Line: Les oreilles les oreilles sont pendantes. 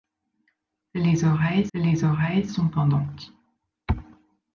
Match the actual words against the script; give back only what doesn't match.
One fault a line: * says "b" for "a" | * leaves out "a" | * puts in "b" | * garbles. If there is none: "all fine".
all fine